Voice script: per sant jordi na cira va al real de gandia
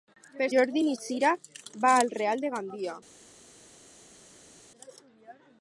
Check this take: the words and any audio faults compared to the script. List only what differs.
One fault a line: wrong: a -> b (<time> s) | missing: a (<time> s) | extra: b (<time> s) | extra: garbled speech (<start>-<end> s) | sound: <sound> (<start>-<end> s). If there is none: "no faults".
missing: sant (0.5 s)